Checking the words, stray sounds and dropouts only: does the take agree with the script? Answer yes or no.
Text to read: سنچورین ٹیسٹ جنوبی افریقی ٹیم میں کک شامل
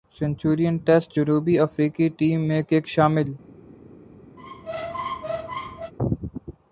no